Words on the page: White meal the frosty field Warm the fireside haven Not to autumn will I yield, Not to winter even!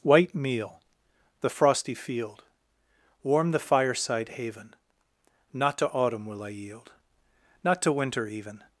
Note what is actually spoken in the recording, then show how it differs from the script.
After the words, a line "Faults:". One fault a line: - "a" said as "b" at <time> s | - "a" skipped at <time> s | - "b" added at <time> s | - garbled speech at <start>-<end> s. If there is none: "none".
White meal the frosty field Warm the fireside haven Not to autumn will I yield, Not to winter even!
Faults:
none